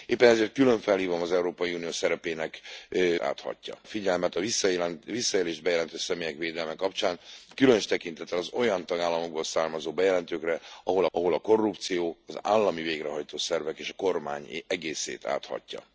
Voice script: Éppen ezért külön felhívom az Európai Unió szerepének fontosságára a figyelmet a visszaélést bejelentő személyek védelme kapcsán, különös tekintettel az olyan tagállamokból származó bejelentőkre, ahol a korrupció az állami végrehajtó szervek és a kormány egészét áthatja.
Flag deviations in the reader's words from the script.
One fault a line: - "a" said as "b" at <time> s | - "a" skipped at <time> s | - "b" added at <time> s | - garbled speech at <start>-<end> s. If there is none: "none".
- "fontosságára" said as "áthatja" at 3.2 s
- "ahol" added at 11.1 s